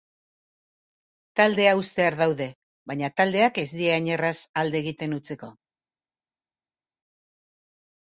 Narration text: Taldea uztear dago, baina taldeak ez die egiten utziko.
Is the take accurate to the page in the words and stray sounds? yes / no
no